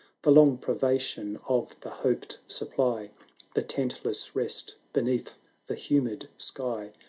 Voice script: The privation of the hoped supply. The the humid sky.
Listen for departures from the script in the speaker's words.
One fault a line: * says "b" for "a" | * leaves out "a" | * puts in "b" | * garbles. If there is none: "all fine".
* puts in "long"
* puts in "tentless rest beneath"